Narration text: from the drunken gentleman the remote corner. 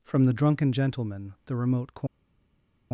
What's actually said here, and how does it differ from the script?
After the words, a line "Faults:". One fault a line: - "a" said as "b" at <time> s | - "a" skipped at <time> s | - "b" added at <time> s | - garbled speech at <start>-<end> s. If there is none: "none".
from the drunken gentleman the remote corner.
Faults:
none